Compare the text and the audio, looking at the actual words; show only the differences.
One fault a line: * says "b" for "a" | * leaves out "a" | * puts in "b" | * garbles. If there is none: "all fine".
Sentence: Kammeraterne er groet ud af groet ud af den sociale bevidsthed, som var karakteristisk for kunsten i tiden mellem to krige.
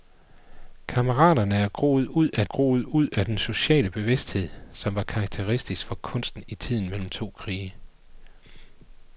all fine